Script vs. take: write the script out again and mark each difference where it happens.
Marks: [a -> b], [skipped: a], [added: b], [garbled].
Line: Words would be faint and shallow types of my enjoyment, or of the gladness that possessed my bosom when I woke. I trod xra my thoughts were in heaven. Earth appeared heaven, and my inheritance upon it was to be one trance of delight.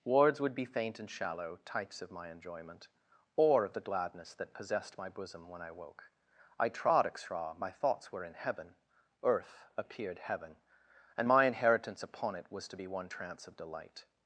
Words would be faint and shallow types of my enjoyment, or of the gladness that possessed my bosom when I woke. I trod xra my thoughts were in heaven. Earth appeared heaven, and my inheritance upon it was to be one trance of delight.